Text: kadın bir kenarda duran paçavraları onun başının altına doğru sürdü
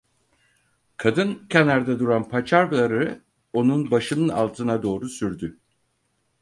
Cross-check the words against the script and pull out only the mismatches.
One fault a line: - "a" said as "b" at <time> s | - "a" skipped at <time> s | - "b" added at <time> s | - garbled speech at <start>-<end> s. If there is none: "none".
- "bir" skipped at 1.5 s